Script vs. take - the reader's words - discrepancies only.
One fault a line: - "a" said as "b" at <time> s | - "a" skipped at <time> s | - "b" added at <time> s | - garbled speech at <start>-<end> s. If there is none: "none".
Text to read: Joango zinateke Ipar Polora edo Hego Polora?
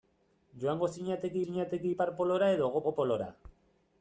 - "zinateke" added at 1.4 s
- "Hego" added at 2.8 s